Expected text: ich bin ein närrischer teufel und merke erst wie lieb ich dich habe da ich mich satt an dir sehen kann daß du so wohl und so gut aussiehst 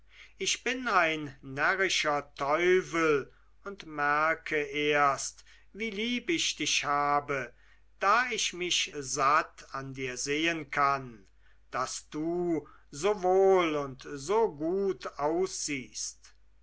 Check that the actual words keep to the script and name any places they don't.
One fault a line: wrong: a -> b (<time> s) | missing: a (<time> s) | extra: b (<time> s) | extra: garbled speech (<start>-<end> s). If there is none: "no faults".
no faults